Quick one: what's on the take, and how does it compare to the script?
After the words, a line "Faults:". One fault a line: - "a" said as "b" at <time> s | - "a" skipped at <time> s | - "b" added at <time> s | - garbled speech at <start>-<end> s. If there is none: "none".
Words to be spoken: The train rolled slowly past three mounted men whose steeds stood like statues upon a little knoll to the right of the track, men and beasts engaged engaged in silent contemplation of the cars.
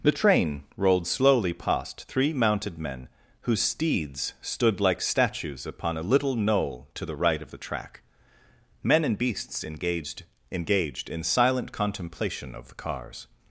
The train rolled slowly past three mounted men whose steeds stood like statues upon a little knoll to the right of the track, men and beasts engaged engaged in silent contemplation of the cars.
Faults:
none